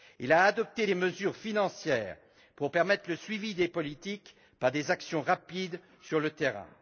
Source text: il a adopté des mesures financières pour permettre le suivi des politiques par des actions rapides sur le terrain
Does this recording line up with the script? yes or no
yes